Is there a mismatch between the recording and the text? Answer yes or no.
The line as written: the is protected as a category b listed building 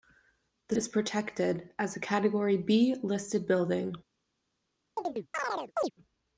no